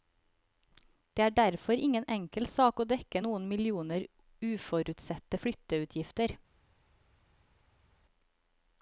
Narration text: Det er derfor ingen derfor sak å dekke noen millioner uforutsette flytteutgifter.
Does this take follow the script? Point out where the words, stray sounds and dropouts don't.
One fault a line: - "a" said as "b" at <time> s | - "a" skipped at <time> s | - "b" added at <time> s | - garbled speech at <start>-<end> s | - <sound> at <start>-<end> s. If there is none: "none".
- "derfor" said as "enkel" at 2.1 s